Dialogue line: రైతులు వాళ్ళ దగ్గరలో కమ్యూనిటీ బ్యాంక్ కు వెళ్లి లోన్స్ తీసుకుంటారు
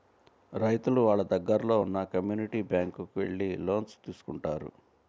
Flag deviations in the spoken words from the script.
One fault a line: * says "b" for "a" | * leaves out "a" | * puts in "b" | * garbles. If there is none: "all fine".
* puts in "ఉన్న"